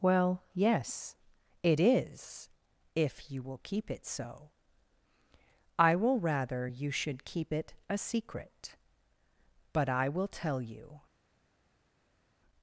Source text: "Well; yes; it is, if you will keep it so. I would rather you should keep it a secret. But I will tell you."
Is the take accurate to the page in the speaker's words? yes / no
no